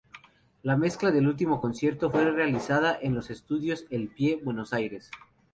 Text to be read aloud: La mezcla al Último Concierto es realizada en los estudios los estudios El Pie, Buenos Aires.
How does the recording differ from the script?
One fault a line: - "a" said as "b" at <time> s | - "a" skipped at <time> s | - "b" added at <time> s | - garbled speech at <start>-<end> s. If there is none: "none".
- "al" said as "del" at 1.1 s
- "es" said as "fue" at 2.1 s
- "los estudios" skipped at 3.9 s